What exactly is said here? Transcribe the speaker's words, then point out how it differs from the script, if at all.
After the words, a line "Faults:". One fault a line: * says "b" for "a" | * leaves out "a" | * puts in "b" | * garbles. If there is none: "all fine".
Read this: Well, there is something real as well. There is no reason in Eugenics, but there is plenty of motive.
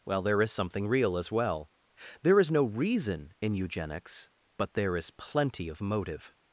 Well, there is something real as well. There is no reason in Eugenics, but there is plenty of motive.
Faults:
all fine